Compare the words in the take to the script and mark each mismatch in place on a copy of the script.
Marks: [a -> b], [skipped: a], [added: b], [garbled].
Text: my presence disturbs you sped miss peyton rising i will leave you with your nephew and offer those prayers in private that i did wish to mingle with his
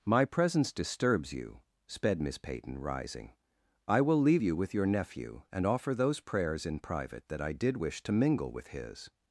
my presence disturbs you sped miss peyton rising i will leave you with your nephew and offer those prayers in private that i did wish to mingle with his